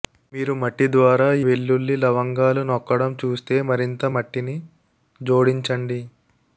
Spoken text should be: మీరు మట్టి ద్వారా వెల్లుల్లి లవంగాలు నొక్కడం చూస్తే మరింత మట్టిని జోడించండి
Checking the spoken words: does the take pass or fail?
pass